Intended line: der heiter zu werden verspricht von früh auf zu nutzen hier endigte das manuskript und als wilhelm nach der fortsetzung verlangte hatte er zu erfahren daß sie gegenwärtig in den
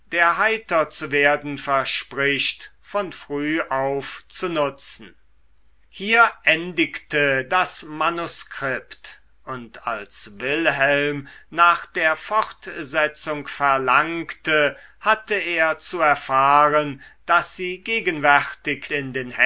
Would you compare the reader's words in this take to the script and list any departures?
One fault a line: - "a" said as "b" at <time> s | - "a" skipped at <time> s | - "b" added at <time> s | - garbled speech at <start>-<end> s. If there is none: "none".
none